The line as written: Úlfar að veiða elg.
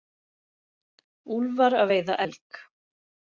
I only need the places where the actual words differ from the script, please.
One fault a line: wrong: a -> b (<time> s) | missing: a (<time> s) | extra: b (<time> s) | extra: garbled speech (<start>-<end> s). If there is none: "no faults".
no faults